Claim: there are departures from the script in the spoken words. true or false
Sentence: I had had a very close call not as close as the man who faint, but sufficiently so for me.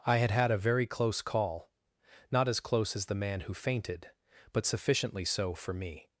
true